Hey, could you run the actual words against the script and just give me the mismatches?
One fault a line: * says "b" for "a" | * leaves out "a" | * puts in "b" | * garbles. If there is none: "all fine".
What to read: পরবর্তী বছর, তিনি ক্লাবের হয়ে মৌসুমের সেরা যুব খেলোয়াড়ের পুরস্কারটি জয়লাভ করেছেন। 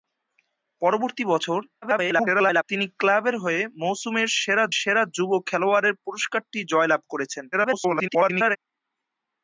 * garbles
* puts in "সেরা"
* garbles